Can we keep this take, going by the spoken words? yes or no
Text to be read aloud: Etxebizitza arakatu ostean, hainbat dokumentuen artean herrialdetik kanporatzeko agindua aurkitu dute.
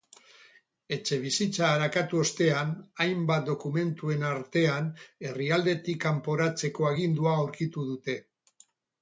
yes